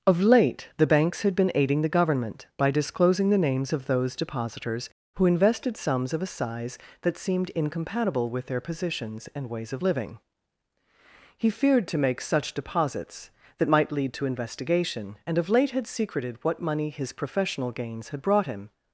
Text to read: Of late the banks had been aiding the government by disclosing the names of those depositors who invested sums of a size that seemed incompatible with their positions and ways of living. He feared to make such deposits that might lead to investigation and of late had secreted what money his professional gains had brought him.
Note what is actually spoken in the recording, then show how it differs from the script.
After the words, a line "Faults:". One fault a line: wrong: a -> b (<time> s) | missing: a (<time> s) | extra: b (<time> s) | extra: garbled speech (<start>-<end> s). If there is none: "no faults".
Of late the banks had been aiding the government by disclosing the names of those depositors who invested sums of a size that seemed incompatible with their positions and ways of living. He feared to make such deposits that might lead to investigation and of late had secreted what money his professional gains had brought him.
Faults:
no faults